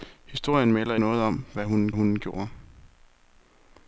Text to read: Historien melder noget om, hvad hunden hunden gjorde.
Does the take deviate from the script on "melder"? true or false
false